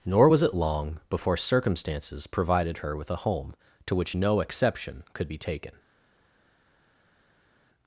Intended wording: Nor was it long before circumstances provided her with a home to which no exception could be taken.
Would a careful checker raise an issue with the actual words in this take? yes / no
no